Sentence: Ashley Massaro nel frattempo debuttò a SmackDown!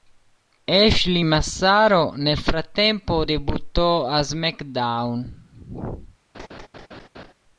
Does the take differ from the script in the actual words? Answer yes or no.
no